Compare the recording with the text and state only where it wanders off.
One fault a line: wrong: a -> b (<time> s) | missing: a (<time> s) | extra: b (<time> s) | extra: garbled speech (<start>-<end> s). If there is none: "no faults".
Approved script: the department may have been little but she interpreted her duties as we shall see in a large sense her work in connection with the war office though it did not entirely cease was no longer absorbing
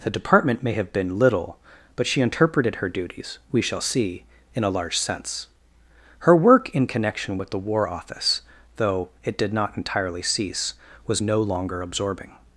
missing: as (3.4 s)